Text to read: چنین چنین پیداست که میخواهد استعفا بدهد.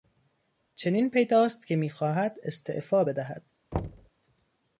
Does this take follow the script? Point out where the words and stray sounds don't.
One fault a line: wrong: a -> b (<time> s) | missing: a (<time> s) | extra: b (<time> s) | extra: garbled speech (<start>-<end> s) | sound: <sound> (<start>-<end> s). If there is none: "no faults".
missing: چنین (1.1 s)
sound: thud (3.7-4.1 s)